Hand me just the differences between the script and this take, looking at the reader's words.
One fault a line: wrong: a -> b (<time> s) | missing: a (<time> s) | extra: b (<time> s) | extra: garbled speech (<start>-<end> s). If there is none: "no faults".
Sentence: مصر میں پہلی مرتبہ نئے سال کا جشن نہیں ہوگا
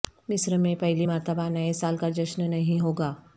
no faults